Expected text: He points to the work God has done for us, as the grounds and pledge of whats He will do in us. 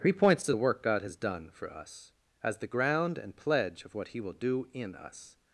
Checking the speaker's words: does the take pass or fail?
fail